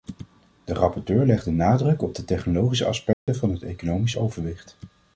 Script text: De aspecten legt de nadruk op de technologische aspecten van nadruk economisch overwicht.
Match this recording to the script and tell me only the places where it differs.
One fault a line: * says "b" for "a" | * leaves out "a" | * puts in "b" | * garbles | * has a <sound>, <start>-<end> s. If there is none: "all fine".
* says "rapporteur" for "aspecten"
* has a dropout, 3.1-3.3 s
* says "het" for "nadruk"